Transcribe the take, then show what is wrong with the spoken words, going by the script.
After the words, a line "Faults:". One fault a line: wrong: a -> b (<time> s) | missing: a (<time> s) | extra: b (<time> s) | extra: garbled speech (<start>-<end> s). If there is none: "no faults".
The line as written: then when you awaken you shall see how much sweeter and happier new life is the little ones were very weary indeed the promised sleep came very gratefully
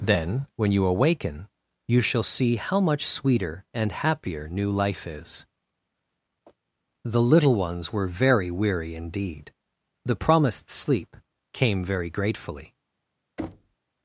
then when you awaken you shall see how much sweeter and happier new life is the little ones were very weary indeed the promised sleep came very gratefully
Faults:
no faults